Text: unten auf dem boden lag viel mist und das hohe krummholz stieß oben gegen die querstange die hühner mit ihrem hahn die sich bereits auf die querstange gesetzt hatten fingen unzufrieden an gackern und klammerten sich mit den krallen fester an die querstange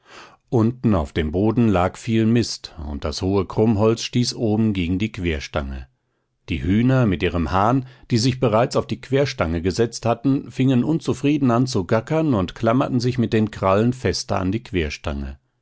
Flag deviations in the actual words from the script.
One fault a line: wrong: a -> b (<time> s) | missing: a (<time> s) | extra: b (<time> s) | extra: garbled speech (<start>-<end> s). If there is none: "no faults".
extra: zu (11.7 s)